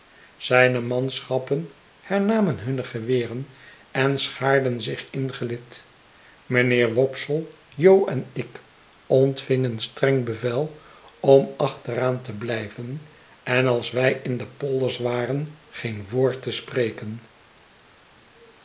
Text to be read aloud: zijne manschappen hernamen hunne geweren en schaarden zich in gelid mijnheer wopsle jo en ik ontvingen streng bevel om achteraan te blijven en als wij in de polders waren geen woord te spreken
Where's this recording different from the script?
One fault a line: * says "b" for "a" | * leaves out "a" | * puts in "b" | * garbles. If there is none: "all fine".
all fine